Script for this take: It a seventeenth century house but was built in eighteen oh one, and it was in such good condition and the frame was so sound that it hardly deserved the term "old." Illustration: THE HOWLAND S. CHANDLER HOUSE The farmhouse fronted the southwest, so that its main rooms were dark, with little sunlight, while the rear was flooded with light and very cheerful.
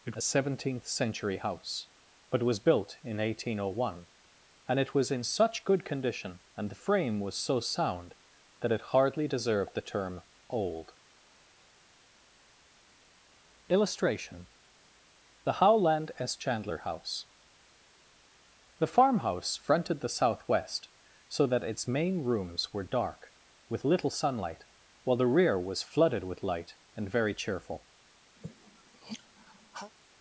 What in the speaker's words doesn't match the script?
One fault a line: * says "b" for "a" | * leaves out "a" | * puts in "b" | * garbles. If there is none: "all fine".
all fine